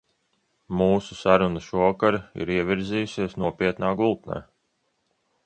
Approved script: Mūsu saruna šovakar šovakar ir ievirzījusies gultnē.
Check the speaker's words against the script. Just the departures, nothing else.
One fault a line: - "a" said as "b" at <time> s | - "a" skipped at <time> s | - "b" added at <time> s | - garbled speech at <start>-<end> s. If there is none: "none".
- "šovakar" skipped at 2.2 s
- "nopietnā" added at 3.4 s